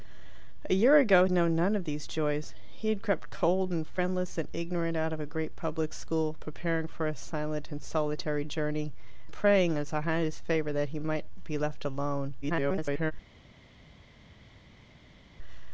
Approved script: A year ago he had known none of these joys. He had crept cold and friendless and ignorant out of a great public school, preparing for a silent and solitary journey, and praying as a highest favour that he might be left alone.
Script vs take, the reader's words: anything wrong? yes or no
yes